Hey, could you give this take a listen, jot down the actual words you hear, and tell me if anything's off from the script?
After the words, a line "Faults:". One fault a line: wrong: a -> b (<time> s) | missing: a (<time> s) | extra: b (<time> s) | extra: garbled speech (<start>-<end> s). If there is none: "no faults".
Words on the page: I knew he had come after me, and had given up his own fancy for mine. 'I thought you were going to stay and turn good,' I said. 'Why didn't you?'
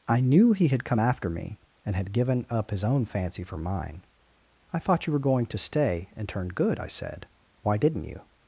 I knew he had come after me, and had given up his own fancy for mine. 'I thought you were going to stay and turn good,' I said. 'Why didn't you?'
Faults:
no faults